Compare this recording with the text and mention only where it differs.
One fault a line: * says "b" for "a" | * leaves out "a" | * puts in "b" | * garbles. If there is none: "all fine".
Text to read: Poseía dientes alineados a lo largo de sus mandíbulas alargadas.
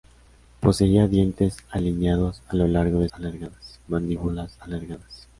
* says "alargadas" for "sus"